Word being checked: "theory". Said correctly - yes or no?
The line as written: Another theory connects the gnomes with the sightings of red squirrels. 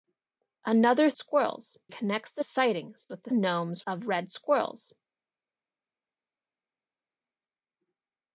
no